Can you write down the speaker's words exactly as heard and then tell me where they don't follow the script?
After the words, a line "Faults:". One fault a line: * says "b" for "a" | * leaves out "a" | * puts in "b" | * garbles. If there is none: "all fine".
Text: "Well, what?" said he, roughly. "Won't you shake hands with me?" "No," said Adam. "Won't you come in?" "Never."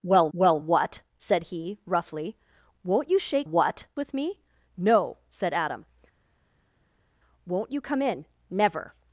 "Well well, what?" said he, roughly. "Won't you shake what with me?" "No," said Adam. "Won't you come in?" "Never."
Faults:
* puts in "well"
* says "what" for "hands"